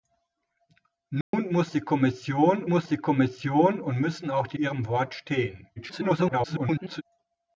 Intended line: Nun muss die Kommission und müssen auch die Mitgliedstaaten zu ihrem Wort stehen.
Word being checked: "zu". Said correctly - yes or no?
no